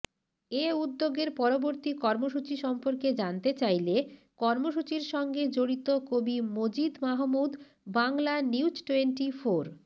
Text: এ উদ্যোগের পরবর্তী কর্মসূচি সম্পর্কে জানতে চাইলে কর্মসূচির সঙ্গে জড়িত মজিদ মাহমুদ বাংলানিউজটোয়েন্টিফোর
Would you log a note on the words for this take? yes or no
yes